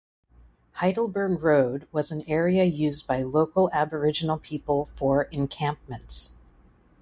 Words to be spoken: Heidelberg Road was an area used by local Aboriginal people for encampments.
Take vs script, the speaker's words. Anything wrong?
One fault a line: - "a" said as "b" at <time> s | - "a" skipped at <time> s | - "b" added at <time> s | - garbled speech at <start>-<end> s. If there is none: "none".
none